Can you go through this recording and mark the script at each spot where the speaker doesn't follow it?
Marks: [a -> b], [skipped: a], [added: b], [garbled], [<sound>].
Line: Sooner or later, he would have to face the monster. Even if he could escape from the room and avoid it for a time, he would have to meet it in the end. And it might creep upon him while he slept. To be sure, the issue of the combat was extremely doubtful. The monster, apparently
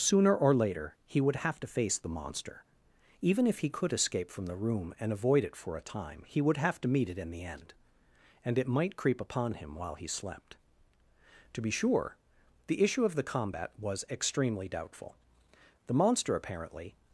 Sooner or later, he would have to face the monster. Even if he could escape from the room and avoid it for a time, he would have to meet it in the end. And it might creep upon him while he slept. To be sure, the issue of the combat was extremely doubtful. The monster, apparently